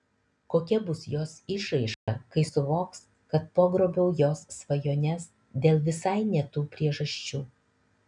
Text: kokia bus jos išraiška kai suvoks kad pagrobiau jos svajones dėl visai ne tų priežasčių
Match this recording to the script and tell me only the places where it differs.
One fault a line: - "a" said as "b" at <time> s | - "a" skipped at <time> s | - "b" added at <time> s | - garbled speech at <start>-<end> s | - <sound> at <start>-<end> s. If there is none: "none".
- dropout at 1.9-2.1 s